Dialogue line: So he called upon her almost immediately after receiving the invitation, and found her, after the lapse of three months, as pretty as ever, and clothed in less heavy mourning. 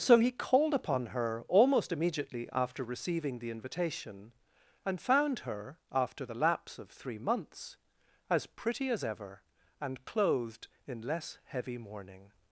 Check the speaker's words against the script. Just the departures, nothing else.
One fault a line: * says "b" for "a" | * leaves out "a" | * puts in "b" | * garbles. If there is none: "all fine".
all fine